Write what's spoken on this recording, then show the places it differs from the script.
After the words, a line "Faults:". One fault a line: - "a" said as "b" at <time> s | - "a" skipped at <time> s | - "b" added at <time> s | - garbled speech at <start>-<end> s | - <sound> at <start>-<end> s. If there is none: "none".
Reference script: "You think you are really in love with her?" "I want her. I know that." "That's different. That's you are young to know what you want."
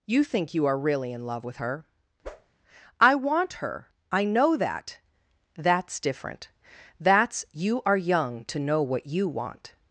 "You think you are really in love with her?" "I want her. I know that." "That's different. That's you are young to know what you want."
Faults:
- whoosh at 2.2-2.5 s